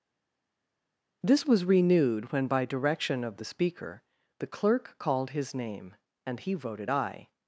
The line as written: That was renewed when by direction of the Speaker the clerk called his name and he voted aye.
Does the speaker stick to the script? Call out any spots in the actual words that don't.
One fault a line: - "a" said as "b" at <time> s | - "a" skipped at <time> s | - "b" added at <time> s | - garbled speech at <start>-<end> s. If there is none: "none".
- "That" said as "This" at 1.2 s